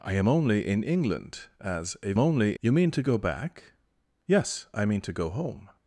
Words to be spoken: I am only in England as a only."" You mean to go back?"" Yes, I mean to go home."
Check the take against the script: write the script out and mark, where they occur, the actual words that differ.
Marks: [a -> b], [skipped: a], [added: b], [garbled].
I am only in England as a only."" You mean to go back?"" Yes, I mean to go home."